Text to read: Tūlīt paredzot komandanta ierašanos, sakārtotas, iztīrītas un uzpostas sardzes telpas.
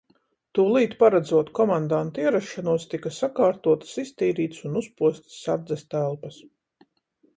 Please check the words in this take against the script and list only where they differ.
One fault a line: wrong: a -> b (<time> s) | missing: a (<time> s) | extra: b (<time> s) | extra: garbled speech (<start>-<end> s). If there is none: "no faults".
extra: tika (2.9 s)